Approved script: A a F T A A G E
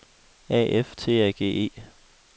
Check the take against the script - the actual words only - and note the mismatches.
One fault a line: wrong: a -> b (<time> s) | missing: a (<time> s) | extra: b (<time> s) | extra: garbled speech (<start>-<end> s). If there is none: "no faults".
missing: a (0.7 s)
missing: A (1.3 s)